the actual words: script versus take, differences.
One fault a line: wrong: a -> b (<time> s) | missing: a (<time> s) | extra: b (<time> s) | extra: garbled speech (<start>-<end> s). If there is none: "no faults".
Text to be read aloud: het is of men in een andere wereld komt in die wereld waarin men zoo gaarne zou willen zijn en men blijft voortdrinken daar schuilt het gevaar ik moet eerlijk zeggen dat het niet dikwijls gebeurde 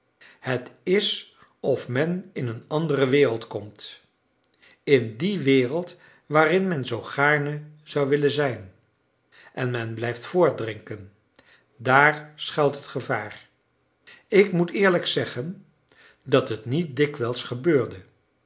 no faults